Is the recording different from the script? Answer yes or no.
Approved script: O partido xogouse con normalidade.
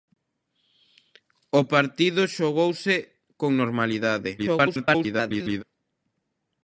yes